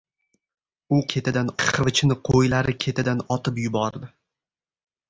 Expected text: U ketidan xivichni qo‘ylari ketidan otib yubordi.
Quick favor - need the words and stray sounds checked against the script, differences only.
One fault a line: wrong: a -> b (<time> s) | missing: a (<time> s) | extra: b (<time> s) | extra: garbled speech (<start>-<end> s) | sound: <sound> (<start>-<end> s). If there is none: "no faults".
no faults